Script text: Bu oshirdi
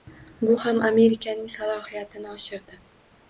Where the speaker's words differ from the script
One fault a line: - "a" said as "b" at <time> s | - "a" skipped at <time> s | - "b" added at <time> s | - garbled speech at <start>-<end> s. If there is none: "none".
- "ham Amerikaning salohiyatini" added at 0.6 s